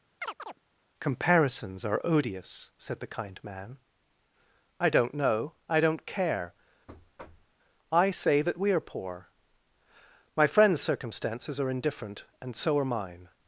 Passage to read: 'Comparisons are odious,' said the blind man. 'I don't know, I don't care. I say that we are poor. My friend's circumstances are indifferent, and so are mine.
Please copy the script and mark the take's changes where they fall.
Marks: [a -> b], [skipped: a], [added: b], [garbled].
'Comparisons are odious,' said the [blind -> kind] man. 'I don't know, I don't care. I say that we are poor. My friend's circumstances are indifferent, and so are mine.